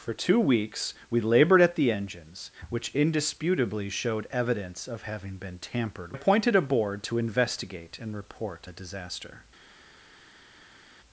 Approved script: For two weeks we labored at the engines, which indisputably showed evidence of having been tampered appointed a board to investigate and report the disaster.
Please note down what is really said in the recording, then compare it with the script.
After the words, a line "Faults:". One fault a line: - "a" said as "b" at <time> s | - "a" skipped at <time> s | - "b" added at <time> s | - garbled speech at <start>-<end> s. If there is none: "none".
For two weeks we labored at the engines, which indisputably showed evidence of having been tampered appointed a board to investigate and report the disaster.
Faults:
none